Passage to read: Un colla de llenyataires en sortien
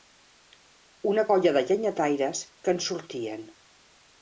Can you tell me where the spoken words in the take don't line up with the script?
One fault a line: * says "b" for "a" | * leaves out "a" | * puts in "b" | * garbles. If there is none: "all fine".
* says "Una" for "Un"
* puts in "que"